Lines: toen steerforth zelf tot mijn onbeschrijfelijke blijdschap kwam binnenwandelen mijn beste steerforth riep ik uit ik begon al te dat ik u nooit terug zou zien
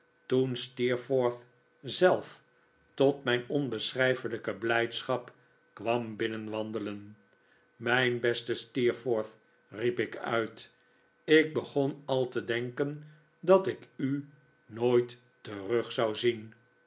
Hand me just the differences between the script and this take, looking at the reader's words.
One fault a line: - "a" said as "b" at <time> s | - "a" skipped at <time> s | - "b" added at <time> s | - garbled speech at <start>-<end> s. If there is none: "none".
- "denken" added at 12.4 s